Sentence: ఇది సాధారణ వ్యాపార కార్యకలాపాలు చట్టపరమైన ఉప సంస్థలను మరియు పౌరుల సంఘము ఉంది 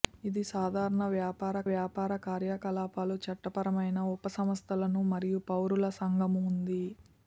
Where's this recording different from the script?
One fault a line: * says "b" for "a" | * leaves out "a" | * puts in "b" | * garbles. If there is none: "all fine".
* puts in "వ్యాపార"